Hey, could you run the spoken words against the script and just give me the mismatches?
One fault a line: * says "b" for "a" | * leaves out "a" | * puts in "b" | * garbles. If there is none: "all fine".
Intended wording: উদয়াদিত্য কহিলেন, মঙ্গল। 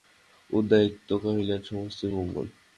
* puts in "সমস্তই"